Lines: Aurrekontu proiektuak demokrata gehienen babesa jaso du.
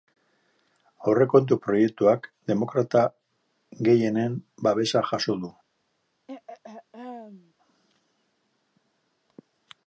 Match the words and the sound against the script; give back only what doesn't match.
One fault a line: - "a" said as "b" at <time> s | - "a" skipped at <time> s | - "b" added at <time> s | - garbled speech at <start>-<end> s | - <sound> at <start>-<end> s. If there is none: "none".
- throat clearing at 6.3-7.5 s